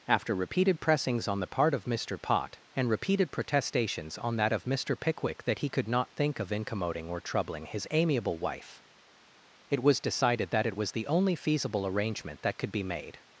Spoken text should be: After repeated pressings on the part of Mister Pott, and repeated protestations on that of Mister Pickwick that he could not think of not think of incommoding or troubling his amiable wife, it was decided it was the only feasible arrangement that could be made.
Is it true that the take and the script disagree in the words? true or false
true